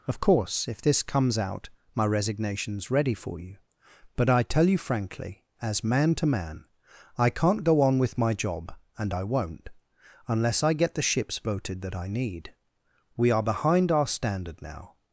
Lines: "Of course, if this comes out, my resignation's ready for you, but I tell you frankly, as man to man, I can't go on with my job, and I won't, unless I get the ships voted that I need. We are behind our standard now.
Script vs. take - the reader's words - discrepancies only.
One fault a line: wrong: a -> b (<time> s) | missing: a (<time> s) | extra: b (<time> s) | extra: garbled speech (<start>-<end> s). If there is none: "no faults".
no faults